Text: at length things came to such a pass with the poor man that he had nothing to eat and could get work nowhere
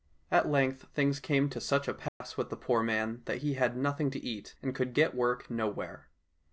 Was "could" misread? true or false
false